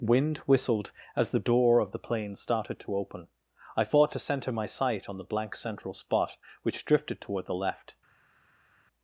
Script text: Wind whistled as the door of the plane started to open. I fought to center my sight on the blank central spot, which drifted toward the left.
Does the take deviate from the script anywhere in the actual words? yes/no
no